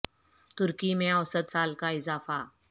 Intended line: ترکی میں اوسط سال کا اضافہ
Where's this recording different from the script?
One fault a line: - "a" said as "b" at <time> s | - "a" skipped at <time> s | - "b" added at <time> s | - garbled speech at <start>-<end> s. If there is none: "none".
none